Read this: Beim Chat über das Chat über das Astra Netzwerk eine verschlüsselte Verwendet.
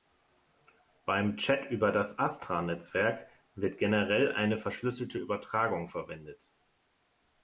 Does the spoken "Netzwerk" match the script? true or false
false